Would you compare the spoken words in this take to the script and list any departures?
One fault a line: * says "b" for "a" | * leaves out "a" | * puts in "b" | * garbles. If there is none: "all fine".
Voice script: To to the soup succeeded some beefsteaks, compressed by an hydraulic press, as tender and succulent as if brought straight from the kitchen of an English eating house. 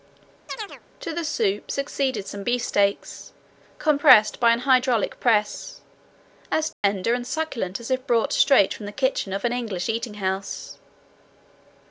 * leaves out "to"